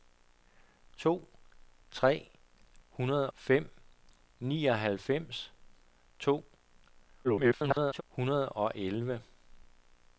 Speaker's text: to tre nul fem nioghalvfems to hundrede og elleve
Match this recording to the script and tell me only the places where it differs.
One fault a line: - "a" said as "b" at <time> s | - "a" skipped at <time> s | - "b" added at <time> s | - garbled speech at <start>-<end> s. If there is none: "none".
- "nul" said as "hundrede" at 2.9 s
- garbled speech at 7.2-8.0 s